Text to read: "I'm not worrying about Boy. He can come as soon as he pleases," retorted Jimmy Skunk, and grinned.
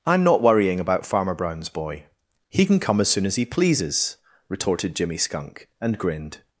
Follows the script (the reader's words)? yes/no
no